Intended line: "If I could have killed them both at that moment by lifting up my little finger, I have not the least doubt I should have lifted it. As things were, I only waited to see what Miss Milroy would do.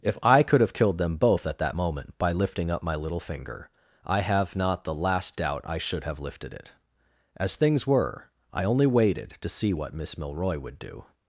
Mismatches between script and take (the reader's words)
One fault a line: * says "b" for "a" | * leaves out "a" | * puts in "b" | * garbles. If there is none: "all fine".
* says "last" for "least"